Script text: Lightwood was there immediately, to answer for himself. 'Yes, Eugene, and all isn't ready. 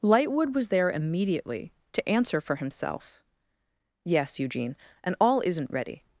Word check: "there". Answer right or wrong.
right